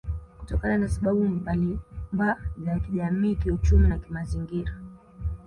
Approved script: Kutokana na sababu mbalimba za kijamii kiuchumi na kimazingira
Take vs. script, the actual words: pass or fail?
pass